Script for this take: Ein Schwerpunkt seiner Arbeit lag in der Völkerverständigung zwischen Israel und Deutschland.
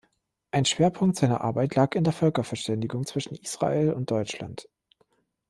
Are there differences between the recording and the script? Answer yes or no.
no